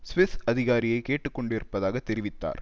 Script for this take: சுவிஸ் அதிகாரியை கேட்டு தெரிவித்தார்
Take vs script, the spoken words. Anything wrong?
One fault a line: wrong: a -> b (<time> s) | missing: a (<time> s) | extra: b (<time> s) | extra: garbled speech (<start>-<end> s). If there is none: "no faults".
extra: கொண்டிருப்பதாக (1.3 s)